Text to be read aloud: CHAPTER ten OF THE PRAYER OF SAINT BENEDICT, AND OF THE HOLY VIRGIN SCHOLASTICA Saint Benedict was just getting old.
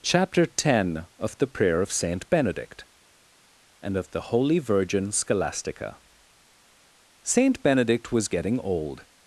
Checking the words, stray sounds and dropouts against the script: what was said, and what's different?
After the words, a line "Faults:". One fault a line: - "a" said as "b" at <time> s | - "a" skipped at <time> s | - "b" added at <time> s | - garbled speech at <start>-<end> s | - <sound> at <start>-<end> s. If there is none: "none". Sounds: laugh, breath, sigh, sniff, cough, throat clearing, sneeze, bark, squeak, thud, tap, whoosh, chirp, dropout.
CHAPTER ten OF THE PRAYER OF SAINT BENEDICT, AND OF THE HOLY VIRGIN SCHOLASTICA Saint Benedict was getting old.
Faults:
- "just" skipped at 8.3 s